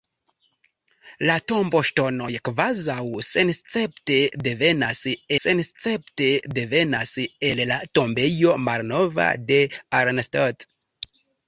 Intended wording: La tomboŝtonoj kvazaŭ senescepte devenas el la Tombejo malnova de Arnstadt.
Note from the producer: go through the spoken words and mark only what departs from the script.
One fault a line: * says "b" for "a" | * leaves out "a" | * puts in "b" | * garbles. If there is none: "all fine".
* puts in "senescepte devenas"